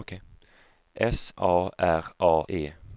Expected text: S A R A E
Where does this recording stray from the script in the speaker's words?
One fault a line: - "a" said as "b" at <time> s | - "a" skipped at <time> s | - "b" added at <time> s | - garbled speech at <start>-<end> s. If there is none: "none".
none